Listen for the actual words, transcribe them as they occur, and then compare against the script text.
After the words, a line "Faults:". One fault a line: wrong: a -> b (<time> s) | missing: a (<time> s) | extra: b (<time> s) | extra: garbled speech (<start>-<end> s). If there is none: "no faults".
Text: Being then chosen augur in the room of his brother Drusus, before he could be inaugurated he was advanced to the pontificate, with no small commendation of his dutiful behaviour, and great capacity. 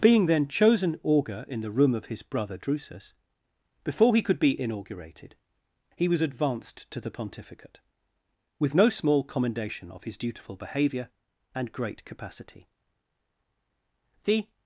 Being then chosen augur in the room of his brother Drusus, before he could be inaugurated he was advanced to the pontificate, with no small commendation of his dutiful behaviour, and great capacity. The
Faults:
extra: The (14.2 s)